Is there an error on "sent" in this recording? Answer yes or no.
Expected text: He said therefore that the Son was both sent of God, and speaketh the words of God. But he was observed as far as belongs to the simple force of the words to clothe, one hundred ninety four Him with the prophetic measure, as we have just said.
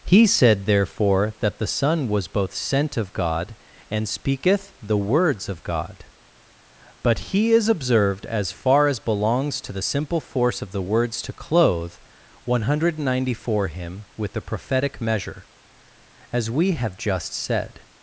no